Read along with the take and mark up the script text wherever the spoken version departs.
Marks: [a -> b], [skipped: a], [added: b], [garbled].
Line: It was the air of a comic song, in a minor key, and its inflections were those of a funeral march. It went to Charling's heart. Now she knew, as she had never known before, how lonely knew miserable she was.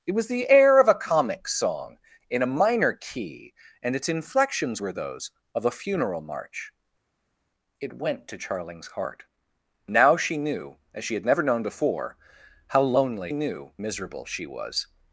It was the air of a comic song, in a minor key, and its inflections were those of a funeral march. It went to Charling's heart. Now she knew, as she had never known before, how lonely knew miserable she was.